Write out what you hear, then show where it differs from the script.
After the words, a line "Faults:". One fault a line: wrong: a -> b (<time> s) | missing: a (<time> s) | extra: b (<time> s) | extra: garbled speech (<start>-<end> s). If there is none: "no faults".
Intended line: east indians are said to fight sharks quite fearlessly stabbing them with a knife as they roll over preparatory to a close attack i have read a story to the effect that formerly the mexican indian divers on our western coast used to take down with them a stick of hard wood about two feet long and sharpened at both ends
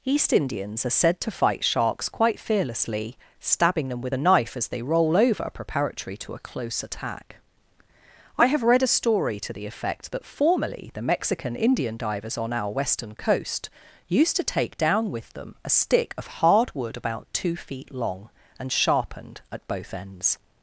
east indians are said to fight sharks quite fearlessly stabbing them with a knife as they roll over preparatory to a close attack i have read a story to the effect that formerly the mexican indian divers on our western coast used to take down with them a stick of hard wood about two feet long and sharpened at both ends
Faults:
no faults